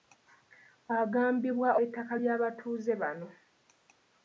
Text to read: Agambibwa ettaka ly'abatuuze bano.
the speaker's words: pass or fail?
pass